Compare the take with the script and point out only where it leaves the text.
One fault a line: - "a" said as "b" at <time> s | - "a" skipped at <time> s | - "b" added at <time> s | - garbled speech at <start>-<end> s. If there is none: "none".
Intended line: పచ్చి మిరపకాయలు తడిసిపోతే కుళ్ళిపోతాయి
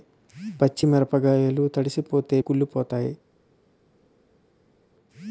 none